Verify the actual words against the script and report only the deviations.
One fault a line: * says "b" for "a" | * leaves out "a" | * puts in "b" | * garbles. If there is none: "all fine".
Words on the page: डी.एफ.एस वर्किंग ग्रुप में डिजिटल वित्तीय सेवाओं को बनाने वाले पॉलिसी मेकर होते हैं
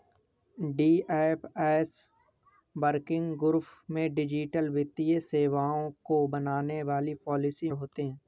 * leaves out "मेकर"